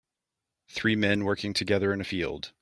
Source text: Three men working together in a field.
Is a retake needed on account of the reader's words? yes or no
no